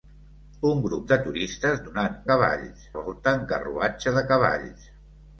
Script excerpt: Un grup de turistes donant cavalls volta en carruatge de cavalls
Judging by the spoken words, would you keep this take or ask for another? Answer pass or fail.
pass